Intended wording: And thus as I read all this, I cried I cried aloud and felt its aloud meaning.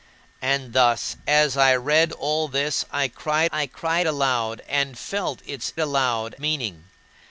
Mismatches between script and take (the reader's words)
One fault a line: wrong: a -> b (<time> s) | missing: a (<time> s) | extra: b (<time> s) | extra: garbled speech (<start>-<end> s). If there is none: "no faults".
no faults